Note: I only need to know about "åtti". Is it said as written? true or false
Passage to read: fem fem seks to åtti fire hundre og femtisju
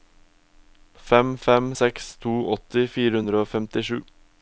true